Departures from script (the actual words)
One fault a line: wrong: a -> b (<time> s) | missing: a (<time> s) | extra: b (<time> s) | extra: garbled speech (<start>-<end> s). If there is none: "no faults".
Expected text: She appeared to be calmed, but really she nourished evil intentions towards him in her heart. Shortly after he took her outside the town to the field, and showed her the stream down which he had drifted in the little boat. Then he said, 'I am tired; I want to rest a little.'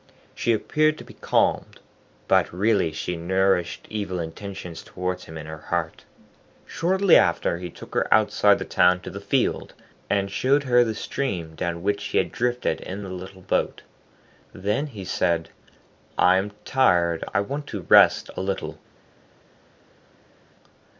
no faults